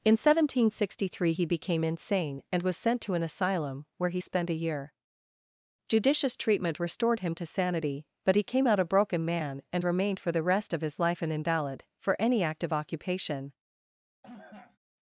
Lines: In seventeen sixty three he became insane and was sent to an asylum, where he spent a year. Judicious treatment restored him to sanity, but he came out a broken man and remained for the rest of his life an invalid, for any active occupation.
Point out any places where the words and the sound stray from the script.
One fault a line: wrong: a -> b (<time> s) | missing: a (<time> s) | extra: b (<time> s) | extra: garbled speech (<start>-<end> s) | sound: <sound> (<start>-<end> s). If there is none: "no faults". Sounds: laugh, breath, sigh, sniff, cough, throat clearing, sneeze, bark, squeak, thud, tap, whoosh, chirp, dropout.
sound: cough (14.2-14.8 s)